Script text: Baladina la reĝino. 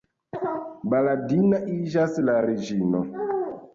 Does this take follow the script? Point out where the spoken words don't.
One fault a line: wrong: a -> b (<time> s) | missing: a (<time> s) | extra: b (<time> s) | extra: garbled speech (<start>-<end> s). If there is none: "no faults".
extra: iĝas (1.7 s)